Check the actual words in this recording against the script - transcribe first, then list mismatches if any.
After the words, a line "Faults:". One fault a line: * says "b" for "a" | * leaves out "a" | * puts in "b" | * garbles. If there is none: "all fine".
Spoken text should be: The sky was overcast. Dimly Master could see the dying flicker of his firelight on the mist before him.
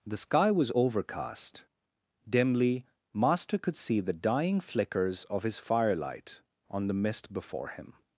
The sky was overcast. Dimly Master could see the dying flickers of his firelight on the mist before him.
Faults:
* says "flickers" for "flicker"